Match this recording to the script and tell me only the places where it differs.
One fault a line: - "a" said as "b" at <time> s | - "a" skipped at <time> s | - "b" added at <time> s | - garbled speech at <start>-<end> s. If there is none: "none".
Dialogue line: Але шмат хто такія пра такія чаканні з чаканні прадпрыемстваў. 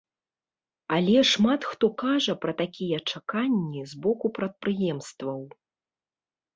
- "такія" said as "кажа" at 2.0 s
- "чаканні" said as "боку" at 4.1 s